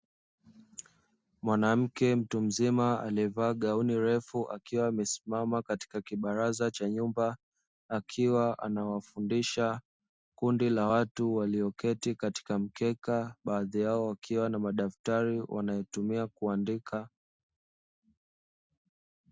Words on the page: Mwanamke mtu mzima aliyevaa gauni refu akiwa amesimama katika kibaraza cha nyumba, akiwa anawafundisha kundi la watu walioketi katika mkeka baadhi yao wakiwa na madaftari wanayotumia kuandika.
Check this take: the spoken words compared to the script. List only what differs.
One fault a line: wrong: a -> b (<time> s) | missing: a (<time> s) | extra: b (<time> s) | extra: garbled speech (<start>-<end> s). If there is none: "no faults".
no faults